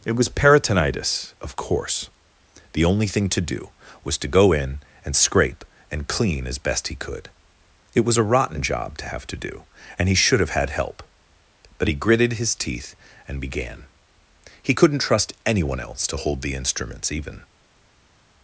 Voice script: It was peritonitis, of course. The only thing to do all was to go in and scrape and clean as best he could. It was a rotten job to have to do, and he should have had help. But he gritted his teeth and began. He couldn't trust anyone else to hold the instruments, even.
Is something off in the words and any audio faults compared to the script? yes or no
yes